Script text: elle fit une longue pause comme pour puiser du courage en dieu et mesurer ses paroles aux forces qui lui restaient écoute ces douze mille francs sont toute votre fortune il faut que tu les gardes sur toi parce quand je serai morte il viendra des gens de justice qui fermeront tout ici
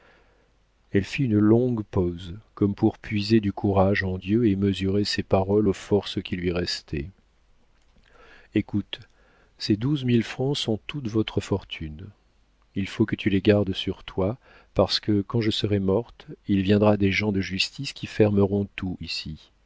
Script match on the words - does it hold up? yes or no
no